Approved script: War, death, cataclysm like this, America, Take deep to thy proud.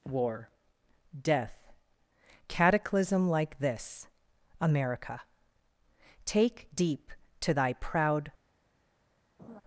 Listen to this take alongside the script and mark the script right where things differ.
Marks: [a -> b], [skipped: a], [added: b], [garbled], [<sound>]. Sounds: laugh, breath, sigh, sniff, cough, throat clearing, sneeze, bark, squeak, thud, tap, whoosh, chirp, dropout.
War, death, cataclysm like this, America, Take deep to thy proud. [laugh]